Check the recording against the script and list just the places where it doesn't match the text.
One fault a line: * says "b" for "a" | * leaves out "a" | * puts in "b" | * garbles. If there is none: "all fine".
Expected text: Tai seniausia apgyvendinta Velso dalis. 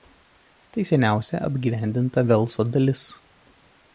all fine